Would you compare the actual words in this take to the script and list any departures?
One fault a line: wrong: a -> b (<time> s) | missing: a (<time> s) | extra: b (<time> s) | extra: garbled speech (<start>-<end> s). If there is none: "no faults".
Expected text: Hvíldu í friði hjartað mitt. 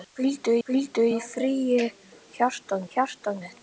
extra: hvíldu (0.7 s)
extra: hjartað (2.9 s)